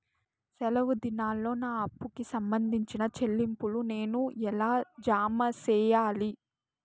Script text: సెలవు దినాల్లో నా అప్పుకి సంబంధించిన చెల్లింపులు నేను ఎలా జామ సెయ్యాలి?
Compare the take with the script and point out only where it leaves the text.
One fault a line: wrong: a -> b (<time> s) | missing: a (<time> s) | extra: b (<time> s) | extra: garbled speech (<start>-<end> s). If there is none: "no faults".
no faults